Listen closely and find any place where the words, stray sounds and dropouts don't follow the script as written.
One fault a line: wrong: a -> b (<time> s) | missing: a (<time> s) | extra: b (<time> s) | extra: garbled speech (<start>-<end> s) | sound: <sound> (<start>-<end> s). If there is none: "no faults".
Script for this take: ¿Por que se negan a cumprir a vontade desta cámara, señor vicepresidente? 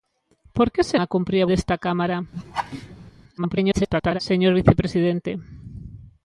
missing: negan (1.0 s)
missing: vontade (1.5 s)
sound: laugh (2.3-3.1 s)
extra: garbled speech (3.4-4.2 s)